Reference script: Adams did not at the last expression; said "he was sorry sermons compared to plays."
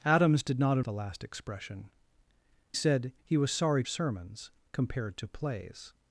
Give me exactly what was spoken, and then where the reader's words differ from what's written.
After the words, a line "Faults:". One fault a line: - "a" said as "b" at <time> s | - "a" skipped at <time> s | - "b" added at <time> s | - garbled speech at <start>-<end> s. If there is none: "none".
Adams did not at the last expression; said "he was sorry sermons compared to plays."
Faults:
none